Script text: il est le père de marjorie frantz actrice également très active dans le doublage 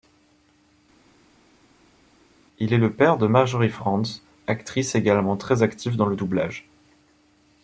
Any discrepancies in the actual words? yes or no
no